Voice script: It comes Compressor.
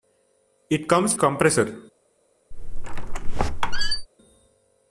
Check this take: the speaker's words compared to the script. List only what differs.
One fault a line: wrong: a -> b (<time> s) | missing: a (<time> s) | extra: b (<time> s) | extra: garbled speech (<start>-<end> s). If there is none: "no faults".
no faults